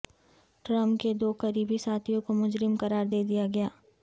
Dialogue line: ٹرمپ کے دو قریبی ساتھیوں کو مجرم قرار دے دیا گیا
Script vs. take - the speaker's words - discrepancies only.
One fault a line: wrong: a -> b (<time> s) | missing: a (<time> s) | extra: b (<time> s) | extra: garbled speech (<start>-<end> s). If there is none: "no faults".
no faults